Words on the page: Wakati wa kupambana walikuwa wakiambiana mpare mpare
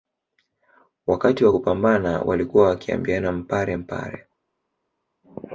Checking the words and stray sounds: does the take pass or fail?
pass